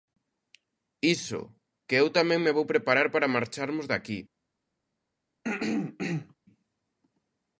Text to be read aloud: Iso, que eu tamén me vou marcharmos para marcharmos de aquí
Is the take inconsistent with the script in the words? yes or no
yes